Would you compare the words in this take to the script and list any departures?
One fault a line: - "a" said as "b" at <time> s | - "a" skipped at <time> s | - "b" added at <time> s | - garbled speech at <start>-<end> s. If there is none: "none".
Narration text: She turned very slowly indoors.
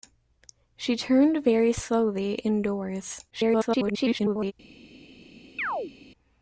- garbled speech at 3.3-4.5 s